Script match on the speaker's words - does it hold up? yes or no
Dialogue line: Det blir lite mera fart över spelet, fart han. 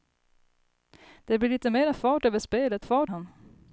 yes